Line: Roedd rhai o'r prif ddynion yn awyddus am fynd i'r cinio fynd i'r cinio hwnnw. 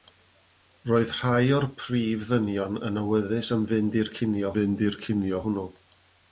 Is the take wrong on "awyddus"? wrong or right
right